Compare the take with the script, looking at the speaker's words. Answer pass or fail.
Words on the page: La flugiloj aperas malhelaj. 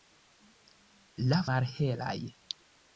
fail